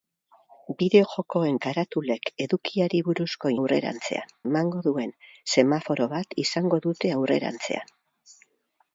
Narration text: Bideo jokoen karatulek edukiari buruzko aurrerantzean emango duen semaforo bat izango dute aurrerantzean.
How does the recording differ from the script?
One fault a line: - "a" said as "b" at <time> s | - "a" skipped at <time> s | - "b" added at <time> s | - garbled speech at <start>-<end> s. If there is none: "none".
none